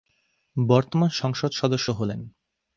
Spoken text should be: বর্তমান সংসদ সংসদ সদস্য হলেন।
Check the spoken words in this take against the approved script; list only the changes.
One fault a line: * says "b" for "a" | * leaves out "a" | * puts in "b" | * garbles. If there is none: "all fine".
* leaves out "সংসদ"